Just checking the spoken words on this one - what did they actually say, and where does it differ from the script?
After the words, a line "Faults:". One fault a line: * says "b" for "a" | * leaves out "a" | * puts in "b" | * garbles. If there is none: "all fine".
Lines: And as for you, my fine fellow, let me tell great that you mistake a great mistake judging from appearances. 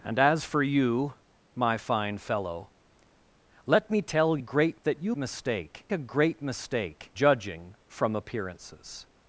And as for you, my fine fellow, let me tell great that you mistake a great mistake judging from appearances.
Faults:
all fine